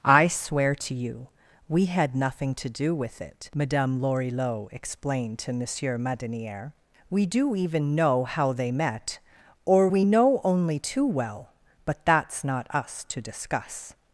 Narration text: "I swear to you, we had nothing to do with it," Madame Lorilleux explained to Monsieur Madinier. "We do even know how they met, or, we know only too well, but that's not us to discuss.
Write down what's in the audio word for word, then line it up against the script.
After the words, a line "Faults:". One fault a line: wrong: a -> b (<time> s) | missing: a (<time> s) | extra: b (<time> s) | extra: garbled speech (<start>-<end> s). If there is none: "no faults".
"I swear to you, we had nothing to do with it," Madame Lorilleux explained to Monsieur Madinier. "We do even know how they met, or, we know only too well, but that's not us to discuss.
Faults:
no faults